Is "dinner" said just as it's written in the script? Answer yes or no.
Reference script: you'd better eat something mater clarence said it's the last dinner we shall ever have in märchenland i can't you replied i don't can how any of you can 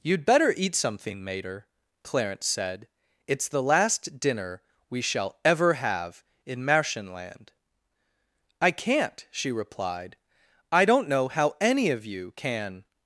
yes